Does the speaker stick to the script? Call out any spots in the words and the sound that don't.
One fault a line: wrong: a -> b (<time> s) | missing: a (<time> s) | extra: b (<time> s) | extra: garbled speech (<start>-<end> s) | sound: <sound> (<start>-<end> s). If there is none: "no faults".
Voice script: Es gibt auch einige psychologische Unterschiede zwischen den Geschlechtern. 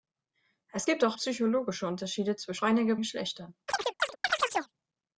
missing: einige (1.2 s)
wrong: den -> einige (2.6 s)
sound: chirp (3.7-4.7 s)